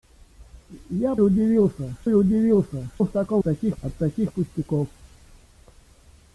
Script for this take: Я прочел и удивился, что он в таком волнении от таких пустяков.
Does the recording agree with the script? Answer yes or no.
no